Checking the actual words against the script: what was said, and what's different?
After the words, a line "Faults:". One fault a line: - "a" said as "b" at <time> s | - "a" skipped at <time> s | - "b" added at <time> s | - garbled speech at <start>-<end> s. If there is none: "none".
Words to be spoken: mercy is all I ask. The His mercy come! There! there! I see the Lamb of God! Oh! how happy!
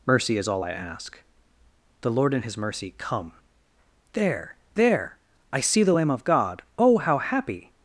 mercy is all I ask. The Lord in His mercy come! There! there! I see the Lamb of God! Oh! how happy!
Faults:
- "Lord in" added at 2.1 s